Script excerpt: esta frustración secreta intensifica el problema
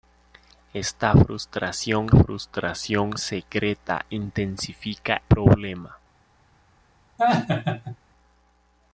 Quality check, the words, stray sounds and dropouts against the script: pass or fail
fail